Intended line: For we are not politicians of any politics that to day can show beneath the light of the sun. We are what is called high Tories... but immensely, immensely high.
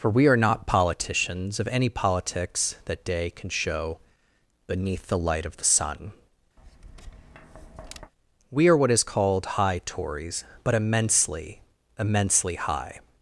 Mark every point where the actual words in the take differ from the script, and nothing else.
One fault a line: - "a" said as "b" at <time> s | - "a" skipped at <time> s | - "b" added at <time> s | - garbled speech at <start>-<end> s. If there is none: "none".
- "to" skipped at 3.0 s